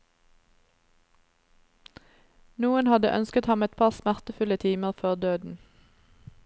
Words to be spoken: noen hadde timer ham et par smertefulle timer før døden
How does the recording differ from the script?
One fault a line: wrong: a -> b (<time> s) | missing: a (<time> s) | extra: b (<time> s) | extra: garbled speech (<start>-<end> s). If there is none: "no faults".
wrong: timer -> ønsket (3.2 s)